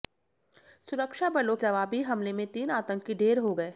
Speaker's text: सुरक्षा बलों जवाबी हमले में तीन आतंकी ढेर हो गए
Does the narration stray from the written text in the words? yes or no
no